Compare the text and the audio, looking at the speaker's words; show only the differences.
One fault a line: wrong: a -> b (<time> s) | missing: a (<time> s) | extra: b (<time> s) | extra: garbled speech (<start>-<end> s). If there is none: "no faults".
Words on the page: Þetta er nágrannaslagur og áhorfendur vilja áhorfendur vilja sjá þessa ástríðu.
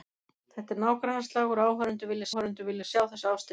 no faults